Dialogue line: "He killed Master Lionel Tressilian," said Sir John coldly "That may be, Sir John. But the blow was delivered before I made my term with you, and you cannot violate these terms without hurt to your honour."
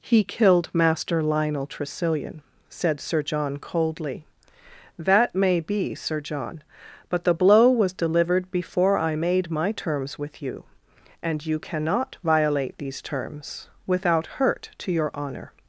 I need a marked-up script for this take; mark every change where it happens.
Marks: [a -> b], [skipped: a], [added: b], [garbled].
"He killed Master Lionel Tressilian," said Sir John coldly "That may be, Sir John. But the blow was delivered before I made my [term -> terms] with you, and you cannot violate these terms without hurt to your honour."